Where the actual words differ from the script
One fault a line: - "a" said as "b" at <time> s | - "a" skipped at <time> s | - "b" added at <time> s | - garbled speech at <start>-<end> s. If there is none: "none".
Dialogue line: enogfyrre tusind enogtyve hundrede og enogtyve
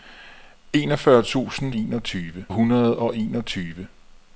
none